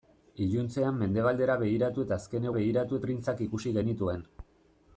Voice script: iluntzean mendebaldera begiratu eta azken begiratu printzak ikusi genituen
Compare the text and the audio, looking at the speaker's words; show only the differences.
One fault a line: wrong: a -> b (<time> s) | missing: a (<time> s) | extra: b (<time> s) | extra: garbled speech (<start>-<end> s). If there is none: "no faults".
no faults